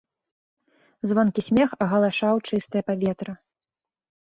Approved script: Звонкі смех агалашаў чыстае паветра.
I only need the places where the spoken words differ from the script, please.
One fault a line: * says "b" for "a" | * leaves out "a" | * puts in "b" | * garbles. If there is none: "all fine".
all fine